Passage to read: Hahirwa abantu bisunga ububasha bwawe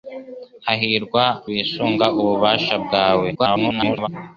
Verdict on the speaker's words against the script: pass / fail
fail